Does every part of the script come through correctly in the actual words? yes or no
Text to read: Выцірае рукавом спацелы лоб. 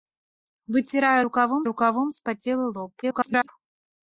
no